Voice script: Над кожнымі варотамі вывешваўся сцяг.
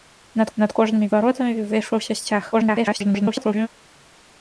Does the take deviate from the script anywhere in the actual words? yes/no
yes